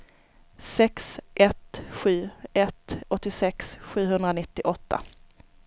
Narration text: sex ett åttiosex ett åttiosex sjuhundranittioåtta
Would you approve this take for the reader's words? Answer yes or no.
no